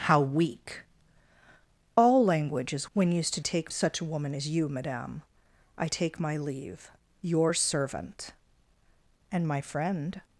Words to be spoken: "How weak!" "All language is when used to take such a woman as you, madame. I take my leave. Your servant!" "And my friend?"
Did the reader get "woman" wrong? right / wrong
right